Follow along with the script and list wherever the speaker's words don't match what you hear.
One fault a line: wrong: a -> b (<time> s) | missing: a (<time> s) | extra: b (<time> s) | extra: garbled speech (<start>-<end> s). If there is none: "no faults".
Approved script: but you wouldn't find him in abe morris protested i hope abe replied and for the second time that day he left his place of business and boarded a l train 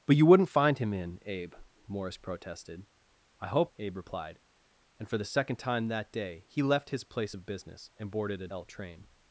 no faults